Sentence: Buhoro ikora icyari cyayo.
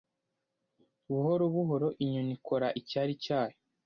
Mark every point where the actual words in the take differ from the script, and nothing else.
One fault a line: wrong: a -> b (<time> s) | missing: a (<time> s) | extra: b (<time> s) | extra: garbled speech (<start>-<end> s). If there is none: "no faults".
extra: buhoro inyoni (1.5 s)